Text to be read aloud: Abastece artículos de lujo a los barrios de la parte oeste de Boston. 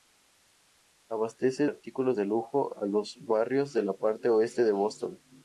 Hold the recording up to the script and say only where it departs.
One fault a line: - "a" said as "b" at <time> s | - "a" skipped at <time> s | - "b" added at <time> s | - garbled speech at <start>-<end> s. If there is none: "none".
none